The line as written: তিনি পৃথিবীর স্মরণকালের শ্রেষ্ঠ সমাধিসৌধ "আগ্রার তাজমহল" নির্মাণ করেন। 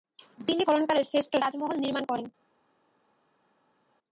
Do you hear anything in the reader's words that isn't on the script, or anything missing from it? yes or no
yes